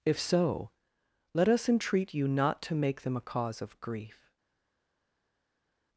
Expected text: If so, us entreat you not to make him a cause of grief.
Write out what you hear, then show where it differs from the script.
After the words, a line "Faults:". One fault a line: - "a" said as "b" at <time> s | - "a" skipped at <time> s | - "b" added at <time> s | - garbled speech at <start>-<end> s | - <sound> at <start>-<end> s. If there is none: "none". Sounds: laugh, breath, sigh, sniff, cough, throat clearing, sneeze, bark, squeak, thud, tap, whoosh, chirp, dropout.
If so, let us entreat you not to make them a cause of grief.
Faults:
- "let" added at 1.4 s
- "him" said as "them" at 3.0 s